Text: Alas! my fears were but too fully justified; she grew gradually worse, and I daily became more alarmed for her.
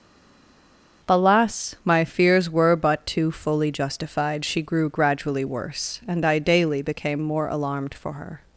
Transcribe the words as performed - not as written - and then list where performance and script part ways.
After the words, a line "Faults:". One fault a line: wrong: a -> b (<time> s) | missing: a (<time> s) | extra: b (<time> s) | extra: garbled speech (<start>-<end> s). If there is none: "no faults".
Alas! my fears were but too fully justified; she grew gradually worse, and I daily became more alarmed for her.
Faults:
no faults